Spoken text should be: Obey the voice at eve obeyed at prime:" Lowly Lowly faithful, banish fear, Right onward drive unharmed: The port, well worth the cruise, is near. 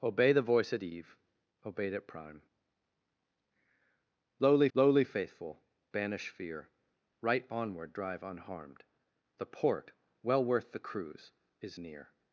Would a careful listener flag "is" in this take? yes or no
no